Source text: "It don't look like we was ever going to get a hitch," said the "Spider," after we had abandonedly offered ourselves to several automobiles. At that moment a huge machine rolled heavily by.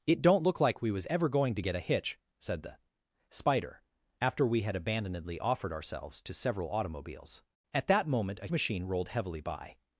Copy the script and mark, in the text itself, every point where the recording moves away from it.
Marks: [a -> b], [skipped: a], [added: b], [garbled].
"It don't look like we was ever going to get a hitch," said the "Spider," after we had abandonedly offered ourselves to several automobiles. At that moment a [skipped: huge] machine rolled heavily by.